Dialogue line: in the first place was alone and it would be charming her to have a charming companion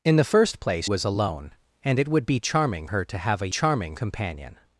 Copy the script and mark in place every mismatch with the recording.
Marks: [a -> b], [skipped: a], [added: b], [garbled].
in the first place was alone and it would be charming her to have a charming companion